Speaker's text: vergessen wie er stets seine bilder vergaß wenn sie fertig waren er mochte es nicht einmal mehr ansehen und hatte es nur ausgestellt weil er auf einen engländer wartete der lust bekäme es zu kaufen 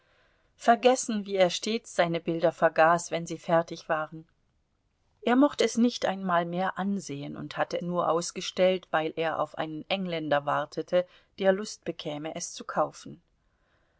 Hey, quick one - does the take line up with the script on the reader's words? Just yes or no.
no